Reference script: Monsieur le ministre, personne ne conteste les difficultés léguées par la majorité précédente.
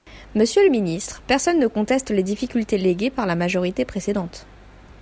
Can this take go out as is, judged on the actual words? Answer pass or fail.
pass